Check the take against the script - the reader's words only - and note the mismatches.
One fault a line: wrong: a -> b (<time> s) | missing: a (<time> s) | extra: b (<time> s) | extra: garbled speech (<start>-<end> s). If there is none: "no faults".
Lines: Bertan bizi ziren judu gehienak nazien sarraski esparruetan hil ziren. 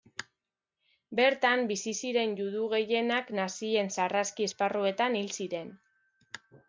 no faults